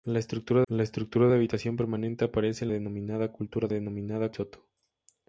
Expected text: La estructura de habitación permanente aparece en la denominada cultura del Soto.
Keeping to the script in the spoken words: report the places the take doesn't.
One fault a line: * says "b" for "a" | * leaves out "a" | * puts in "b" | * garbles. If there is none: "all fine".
* puts in "la estructura"
* leaves out "la"
* says "denominada" for "del"